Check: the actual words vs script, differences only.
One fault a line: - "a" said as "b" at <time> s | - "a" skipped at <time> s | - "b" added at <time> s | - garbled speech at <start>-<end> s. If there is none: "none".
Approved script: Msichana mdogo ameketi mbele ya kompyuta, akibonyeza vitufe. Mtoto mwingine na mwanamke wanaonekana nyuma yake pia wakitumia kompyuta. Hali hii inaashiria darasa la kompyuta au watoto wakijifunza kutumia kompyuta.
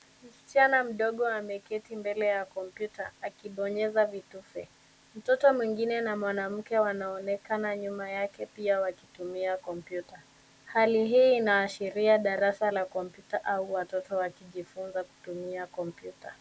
none